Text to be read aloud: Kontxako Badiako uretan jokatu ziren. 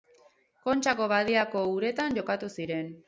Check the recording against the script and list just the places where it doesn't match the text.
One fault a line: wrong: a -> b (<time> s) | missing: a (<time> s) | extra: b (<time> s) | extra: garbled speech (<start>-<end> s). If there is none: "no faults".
no faults